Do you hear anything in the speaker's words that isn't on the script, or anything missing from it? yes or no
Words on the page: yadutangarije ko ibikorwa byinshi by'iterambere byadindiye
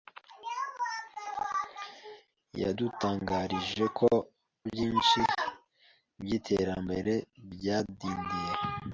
yes